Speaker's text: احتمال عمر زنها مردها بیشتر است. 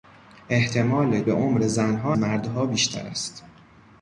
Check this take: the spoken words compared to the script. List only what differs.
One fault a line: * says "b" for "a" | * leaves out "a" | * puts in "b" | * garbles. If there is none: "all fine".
all fine